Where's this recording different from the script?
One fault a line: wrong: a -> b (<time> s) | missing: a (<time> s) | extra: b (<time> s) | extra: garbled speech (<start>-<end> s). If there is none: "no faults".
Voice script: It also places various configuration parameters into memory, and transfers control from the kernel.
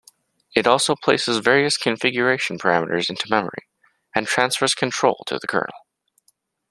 wrong: from -> to (5.3 s)